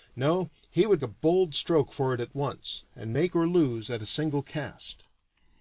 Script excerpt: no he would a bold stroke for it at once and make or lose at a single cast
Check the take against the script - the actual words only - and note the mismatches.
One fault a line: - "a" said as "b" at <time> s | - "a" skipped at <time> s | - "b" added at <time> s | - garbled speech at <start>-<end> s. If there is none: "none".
none